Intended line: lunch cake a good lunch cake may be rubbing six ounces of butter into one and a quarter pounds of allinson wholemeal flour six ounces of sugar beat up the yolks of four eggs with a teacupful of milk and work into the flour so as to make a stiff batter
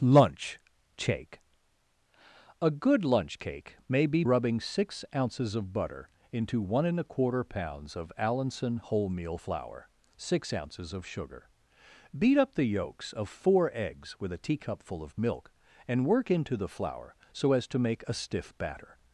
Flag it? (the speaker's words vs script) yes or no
no